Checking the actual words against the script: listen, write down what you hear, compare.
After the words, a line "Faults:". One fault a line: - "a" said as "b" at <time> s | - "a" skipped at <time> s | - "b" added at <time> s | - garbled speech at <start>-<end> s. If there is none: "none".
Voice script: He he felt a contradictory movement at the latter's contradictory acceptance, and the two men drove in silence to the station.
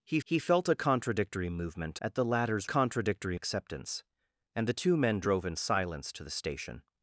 He he felt a contradictory movement at the latter's contradictory acceptance, and the two men drove in silence to the station.
Faults:
none